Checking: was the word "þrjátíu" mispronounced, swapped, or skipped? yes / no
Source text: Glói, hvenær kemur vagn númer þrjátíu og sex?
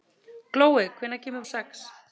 yes